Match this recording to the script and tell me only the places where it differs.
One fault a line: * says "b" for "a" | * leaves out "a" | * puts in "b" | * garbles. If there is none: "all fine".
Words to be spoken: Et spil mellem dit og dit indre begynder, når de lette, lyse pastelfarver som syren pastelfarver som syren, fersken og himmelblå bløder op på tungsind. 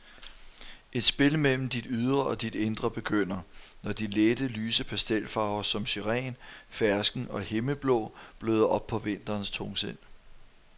* puts in "ydre"
* leaves out "pastelfarver som syren"
* puts in "vinterens"